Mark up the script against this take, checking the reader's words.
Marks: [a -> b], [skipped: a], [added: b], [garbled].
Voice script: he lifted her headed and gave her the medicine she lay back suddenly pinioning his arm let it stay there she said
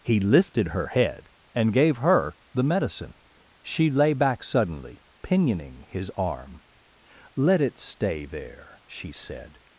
he lifted her [headed -> head] and gave her the medicine she lay back suddenly pinioning his arm let it stay there she said